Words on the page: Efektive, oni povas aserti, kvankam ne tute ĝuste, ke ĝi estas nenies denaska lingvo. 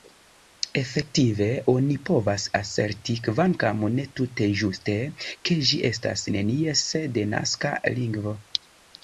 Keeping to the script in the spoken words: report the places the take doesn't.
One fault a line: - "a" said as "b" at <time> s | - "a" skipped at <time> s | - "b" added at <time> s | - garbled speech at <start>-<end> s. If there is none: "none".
none